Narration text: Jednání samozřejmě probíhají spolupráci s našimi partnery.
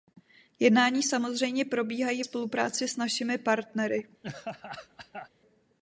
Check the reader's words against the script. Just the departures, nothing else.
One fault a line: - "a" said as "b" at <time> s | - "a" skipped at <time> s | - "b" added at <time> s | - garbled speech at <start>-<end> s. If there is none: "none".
none